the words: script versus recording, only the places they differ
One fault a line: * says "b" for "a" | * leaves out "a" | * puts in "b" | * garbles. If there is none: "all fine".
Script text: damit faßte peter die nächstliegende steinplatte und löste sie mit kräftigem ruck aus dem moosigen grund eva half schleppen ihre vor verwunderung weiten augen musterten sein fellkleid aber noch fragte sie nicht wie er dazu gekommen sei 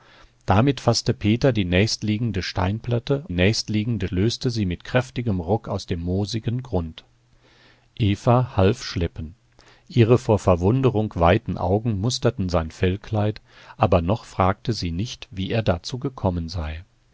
* says "nächstliegende" for "und"